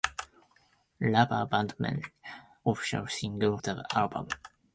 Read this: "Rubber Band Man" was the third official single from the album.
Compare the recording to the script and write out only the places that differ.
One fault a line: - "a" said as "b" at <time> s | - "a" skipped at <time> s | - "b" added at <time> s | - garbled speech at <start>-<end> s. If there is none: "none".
- "was the third" skipped at 2.0 s
- "from" skipped at 3.6 s